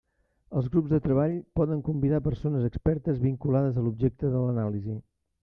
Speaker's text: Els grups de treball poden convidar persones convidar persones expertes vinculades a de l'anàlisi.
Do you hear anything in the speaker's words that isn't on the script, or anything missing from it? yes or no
yes